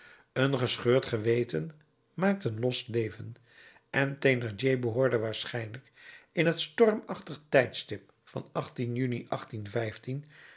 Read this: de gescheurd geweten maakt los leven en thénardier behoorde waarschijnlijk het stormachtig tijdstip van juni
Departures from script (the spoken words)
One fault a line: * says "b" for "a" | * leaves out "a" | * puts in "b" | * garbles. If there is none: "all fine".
* says "een" for "de"
* puts in "een"
* puts in "in"